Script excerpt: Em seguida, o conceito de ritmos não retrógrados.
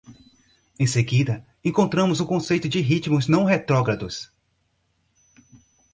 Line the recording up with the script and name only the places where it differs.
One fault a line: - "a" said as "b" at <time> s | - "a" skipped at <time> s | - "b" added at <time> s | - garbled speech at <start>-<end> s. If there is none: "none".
- "encontramos" added at 1.6 s